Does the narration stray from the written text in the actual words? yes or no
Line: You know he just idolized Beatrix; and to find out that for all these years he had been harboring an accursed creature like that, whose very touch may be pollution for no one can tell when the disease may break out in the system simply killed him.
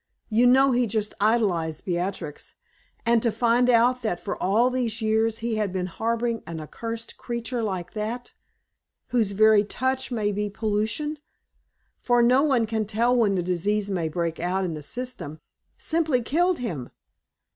no